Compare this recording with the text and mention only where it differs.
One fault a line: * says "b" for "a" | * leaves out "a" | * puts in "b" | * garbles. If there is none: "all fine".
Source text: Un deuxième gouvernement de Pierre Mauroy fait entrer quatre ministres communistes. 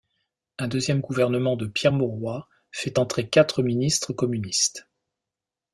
all fine